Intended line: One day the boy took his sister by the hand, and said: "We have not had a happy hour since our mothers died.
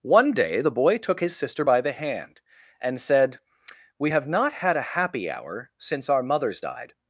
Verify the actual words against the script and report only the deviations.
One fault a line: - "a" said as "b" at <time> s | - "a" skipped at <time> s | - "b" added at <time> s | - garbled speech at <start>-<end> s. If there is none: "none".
none